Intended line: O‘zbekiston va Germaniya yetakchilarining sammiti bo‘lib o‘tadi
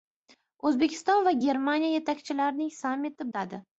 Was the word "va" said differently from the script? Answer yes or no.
no